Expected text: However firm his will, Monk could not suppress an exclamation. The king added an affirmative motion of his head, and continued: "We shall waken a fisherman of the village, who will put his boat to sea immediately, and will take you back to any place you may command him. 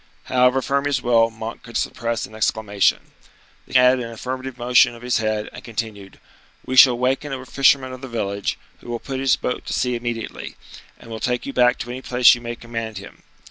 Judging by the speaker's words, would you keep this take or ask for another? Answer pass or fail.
fail